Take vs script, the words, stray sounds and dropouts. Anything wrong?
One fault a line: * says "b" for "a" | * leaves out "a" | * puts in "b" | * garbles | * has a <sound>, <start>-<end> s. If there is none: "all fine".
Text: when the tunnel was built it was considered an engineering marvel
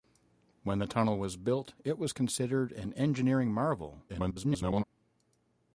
* garbles